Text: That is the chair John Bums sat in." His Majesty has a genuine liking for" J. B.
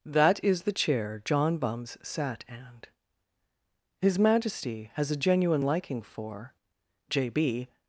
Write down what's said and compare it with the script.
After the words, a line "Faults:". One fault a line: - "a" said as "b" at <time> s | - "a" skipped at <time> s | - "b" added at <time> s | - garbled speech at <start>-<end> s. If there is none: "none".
That is the chair John Bums sat and." His Majesty has a genuine liking for" J. B.
Faults:
- "in" said as "and" at 2.5 s